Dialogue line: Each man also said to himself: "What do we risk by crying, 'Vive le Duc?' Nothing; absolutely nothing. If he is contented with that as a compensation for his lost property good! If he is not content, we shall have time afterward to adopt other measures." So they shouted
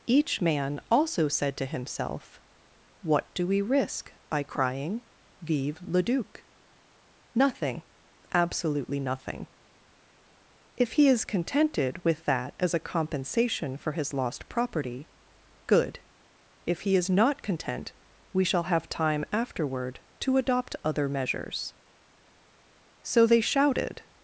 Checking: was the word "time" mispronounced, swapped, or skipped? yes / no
no